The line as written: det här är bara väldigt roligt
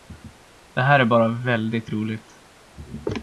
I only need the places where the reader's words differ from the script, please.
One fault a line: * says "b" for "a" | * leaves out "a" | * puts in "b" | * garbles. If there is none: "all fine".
all fine